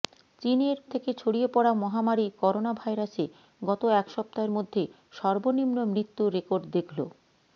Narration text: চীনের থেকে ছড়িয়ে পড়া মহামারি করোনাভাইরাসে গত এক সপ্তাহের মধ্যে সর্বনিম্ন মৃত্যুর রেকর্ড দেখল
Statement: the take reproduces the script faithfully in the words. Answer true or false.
true